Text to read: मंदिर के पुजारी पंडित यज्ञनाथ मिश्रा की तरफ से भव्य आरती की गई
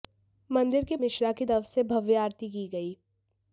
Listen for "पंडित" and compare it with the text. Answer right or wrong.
wrong